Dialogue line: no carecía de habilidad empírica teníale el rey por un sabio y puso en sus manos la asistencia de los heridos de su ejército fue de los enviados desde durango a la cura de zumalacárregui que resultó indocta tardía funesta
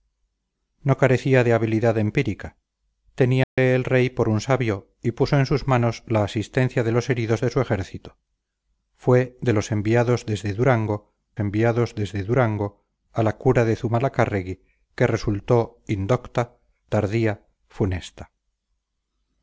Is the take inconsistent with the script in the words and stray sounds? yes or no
yes